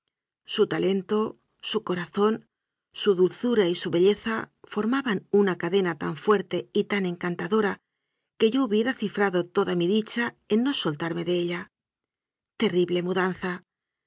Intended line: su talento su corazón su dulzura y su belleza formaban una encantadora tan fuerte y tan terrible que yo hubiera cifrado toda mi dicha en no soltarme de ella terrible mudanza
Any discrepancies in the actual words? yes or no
yes